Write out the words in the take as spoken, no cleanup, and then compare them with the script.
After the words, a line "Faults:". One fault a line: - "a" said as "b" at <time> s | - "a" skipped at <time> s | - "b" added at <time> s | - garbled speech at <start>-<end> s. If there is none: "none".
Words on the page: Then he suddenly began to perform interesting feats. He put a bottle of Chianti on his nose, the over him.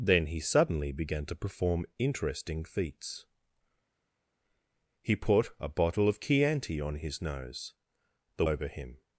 Then he suddenly began to perform interesting feats. He put a bottle of Chianti on his nose, the over him.
Faults:
none